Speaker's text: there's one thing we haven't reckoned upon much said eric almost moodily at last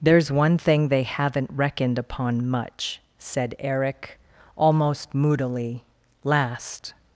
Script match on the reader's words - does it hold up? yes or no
no